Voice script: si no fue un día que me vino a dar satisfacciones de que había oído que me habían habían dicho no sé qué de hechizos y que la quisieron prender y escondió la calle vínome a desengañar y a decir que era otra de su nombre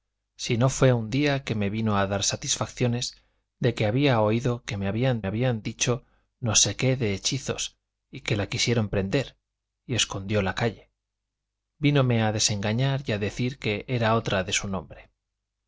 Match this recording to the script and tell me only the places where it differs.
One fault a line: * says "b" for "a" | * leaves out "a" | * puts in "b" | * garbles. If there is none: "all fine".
all fine